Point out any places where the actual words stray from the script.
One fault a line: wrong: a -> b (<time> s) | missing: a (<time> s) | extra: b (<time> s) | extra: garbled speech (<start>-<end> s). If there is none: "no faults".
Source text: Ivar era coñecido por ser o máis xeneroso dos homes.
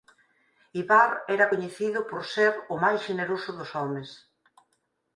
no faults